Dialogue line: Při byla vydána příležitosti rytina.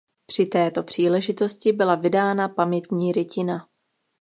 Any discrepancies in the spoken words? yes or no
yes